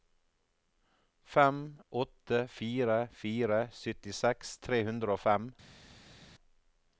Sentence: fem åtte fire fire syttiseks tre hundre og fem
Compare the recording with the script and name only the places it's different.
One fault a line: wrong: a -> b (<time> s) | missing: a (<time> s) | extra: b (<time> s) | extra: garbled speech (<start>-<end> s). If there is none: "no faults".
no faults